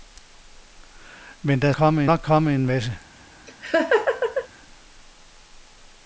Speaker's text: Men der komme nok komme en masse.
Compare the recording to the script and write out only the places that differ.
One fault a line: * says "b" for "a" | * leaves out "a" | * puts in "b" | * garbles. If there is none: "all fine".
all fine